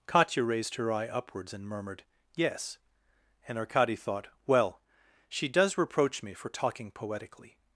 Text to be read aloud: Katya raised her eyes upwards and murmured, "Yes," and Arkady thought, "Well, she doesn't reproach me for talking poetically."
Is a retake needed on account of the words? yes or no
yes